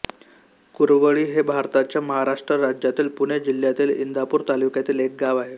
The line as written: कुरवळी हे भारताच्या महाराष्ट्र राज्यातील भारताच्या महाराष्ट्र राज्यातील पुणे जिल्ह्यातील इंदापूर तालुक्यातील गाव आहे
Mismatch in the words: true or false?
true